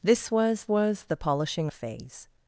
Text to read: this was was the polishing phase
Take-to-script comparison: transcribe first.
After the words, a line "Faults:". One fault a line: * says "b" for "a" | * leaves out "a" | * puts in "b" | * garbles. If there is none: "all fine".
this was was the polishing phase
Faults:
all fine